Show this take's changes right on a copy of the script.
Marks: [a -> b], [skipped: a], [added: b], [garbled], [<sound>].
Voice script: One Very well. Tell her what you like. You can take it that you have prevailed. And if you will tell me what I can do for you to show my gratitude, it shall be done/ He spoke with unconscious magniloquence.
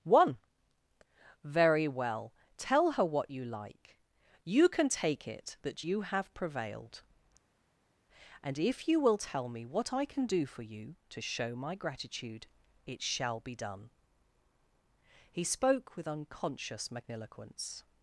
One Very well. Tell her what you like. You can take it that you have prevailed. And if you will tell me what I can do for you to show my gratitude, it shall be done/ He spoke with unconscious magniloquence.